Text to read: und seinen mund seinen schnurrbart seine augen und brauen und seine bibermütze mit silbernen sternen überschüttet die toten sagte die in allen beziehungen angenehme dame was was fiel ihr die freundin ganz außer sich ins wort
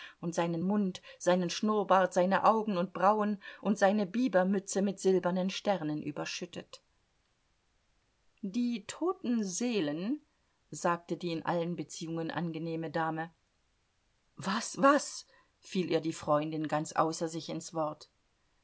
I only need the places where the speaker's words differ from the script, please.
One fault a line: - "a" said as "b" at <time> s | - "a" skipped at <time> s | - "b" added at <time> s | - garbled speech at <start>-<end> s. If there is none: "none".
- "seelen" added at 9.4 s